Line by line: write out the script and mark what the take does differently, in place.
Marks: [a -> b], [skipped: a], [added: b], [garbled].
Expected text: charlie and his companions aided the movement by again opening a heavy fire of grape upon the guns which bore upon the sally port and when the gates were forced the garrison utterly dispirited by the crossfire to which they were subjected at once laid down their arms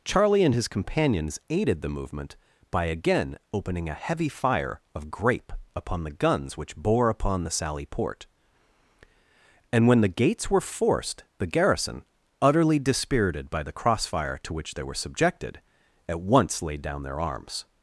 charlie and his companions aided the movement by again opening a heavy fire of grape upon the guns which bore upon the sally port and when the gates were forced the garrison utterly dispirited by the crossfire to which they were subjected at once laid down their arms